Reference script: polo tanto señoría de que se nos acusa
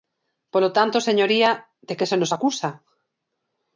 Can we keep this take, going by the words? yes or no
yes